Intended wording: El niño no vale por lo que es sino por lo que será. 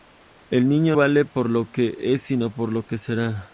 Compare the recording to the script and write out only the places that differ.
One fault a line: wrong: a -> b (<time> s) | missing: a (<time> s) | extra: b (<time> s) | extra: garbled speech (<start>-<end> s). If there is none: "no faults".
missing: no (0.9 s)